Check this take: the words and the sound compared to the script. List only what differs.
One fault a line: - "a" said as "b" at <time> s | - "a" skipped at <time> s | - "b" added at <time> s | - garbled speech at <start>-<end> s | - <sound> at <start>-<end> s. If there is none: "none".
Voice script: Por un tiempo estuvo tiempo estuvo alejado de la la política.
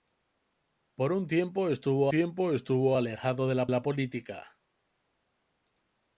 none